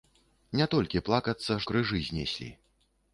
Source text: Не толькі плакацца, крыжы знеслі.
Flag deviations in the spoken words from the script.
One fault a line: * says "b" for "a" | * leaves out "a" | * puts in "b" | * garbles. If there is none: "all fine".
all fine